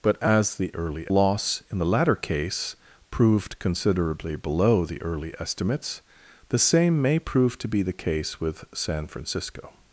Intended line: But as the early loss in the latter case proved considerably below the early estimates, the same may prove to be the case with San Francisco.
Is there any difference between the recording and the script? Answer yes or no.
no